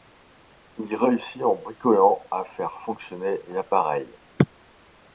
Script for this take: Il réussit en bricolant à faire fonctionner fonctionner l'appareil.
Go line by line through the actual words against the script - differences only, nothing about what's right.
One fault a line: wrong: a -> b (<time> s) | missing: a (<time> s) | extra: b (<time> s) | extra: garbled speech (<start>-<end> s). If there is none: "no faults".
missing: fonctionner (3.4 s)